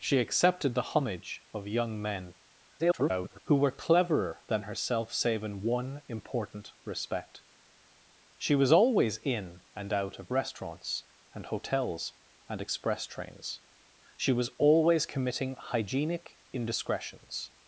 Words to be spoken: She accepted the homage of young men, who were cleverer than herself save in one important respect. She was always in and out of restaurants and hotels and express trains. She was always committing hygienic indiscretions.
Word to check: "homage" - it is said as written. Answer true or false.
true